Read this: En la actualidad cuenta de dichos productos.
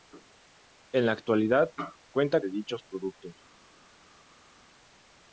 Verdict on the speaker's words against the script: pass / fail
pass